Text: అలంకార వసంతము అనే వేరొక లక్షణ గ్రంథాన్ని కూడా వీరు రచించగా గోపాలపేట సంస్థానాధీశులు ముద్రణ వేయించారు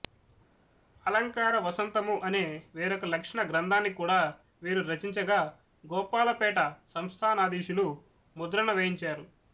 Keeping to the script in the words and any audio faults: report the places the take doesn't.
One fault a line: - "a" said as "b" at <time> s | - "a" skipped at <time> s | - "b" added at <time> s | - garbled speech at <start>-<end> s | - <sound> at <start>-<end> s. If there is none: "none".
none